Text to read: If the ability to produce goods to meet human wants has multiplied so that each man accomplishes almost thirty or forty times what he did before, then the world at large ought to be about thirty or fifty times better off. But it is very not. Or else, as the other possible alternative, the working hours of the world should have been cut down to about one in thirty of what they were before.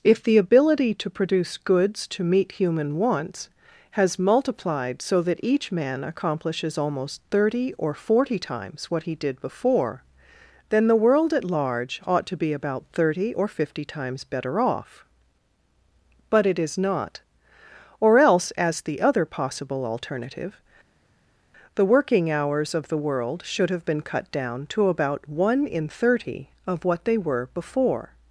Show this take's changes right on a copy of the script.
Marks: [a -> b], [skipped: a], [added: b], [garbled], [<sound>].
If the ability to produce goods to meet human wants has multiplied so that each man accomplishes almost thirty or forty times what he did before, then the world at large ought to be about thirty or fifty times better off. But it is [skipped: very] not. Or else, as the other possible alternative, the working hours of the world should have been cut down to about one in thirty of what they were before.